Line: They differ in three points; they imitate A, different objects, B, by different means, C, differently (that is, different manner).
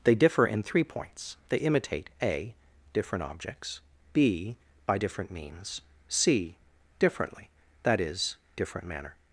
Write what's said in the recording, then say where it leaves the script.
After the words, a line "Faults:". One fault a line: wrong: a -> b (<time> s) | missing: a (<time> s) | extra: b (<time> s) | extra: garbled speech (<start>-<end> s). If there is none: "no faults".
They differ in three points; they imitate A, different objects, B, by different means, C, differently (that is, different manner).
Faults:
no faults